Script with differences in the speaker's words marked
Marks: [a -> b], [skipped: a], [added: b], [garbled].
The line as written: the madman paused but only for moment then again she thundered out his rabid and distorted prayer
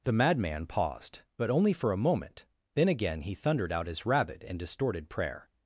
the madman paused but only for [added: a] moment then again [she -> he] thundered out his rabid and distorted prayer